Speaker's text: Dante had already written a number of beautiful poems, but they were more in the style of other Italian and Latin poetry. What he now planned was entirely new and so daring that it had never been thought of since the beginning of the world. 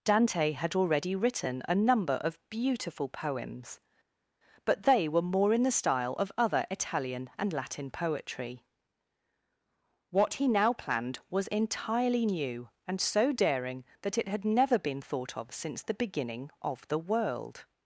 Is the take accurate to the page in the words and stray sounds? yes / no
yes